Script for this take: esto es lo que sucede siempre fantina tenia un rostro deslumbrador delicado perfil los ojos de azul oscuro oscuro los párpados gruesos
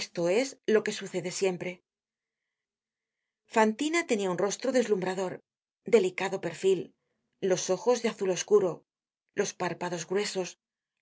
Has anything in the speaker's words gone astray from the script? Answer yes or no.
yes